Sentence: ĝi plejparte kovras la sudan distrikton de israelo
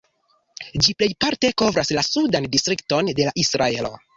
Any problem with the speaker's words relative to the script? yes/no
no